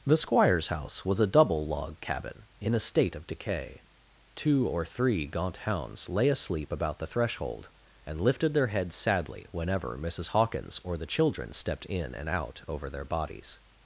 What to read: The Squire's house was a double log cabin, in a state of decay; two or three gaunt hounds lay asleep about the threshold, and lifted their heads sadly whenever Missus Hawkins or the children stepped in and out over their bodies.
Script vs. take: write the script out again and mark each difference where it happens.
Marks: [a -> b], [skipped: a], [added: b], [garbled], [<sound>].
The Squire's house was a double log cabin, in a state of decay; two or three gaunt hounds lay asleep about the threshold, and lifted their heads sadly whenever Missus Hawkins or the children stepped in and out over their bodies.